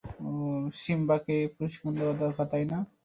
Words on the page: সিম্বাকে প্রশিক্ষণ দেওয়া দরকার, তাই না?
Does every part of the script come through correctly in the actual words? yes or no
yes